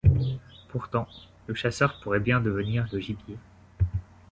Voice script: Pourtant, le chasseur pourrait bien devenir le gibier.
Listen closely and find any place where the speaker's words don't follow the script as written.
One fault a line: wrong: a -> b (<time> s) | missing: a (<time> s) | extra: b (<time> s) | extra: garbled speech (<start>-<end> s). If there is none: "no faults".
no faults